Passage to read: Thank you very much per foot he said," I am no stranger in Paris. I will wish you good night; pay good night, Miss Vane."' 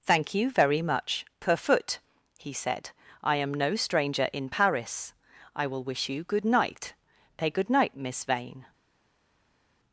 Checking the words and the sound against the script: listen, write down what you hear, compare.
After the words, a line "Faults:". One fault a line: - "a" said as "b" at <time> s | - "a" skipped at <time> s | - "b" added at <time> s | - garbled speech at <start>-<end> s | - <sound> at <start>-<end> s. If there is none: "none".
Thank you very much per foot he said," I am no stranger in Paris. I will wish you good night; pay good night, Miss Vane."'
Faults:
none